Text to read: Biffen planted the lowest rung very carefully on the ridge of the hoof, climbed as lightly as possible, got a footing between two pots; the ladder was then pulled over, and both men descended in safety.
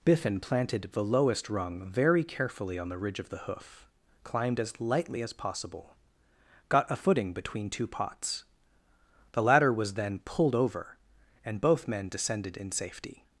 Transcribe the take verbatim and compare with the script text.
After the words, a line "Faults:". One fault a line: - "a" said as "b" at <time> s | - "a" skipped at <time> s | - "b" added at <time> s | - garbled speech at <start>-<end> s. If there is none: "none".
Biffen planted the lowest rung very carefully on the ridge of the hoof, climbed as lightly as possible, got a footing between two pots; the ladder was then pulled over, and both men descended in safety.
Faults:
none